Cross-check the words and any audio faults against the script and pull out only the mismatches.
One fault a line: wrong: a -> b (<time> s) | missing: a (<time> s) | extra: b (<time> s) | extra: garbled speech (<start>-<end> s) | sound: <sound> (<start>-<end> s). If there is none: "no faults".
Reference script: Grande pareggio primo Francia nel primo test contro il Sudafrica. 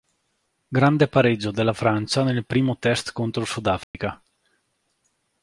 wrong: primo -> della (1.5 s)
sound: dropout (3.8-3.9 s)